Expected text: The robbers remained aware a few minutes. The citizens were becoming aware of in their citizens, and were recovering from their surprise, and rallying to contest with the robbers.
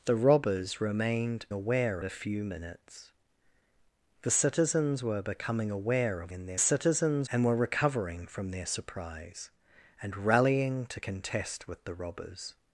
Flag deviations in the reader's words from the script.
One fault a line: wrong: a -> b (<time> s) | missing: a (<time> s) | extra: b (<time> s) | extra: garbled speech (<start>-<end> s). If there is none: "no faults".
no faults